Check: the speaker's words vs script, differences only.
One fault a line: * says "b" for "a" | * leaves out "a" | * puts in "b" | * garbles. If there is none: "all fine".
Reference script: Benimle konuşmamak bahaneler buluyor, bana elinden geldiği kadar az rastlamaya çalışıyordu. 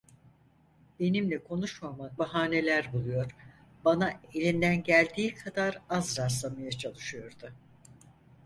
all fine